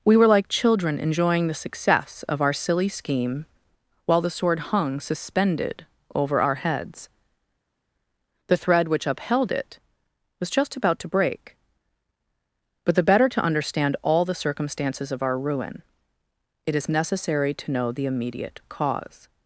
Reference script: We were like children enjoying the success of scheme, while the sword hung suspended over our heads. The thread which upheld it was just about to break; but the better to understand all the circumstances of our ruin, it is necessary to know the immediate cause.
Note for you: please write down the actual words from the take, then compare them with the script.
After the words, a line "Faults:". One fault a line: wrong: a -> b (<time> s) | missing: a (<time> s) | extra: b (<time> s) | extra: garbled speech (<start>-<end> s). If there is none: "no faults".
We were like children enjoying the success of our silly scheme, while the sword hung suspended over our heads. The thread which upheld it was just about to break; but the better to understand all the circumstances of our ruin, it is necessary to know the immediate cause.
Faults:
extra: our silly (2.4 s)